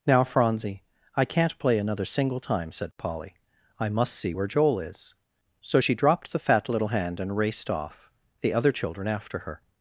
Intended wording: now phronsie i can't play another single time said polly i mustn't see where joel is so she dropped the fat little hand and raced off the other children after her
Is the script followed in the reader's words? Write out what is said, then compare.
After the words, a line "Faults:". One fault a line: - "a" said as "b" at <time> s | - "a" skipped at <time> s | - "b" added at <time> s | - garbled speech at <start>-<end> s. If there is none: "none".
now phronsie i can't play another single time said polly i must see where joel is so she dropped the fat little hand and raced off the other children after her
Faults:
- "mustn't" said as "must" at 3.9 s